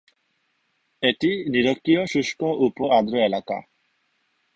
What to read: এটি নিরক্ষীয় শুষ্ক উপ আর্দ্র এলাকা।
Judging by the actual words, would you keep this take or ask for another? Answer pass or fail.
pass